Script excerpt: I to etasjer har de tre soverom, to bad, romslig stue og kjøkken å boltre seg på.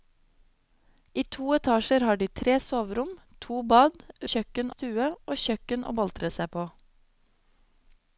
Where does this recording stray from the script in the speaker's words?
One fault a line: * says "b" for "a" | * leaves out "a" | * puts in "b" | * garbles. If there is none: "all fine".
* says "kjøkken" for "romslig"